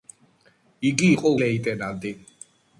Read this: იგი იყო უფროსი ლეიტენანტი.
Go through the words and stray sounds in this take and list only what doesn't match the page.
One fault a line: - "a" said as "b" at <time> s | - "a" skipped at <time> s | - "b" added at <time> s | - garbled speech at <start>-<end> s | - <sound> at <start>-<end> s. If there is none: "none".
- "უფროსი" skipped at 1.3 s